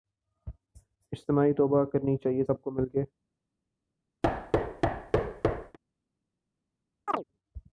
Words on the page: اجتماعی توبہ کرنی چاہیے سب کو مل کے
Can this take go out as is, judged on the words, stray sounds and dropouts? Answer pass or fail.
fail